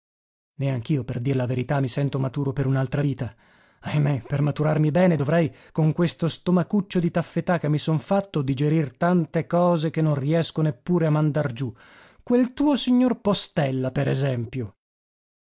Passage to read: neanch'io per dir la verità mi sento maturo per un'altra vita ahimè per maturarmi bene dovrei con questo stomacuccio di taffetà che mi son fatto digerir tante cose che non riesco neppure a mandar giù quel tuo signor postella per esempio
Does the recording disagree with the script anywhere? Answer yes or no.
no